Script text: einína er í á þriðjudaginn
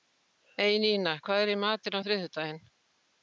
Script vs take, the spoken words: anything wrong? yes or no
yes